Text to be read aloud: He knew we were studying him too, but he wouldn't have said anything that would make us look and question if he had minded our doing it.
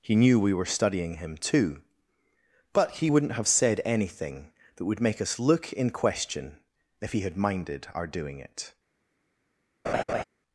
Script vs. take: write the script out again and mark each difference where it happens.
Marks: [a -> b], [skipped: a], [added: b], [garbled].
He knew we were studying him too, but he wouldn't have said anything that would make us look [and -> in] question if he had minded our doing it.